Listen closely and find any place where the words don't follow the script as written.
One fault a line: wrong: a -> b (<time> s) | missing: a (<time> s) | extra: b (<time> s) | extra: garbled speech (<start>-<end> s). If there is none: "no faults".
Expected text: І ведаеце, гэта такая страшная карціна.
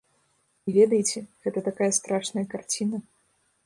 no faults